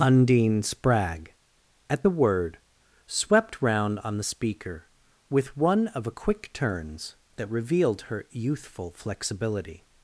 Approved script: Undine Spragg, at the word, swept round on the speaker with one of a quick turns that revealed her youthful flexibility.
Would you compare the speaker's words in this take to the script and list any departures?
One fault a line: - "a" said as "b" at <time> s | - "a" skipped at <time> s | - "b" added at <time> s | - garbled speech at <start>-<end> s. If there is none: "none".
none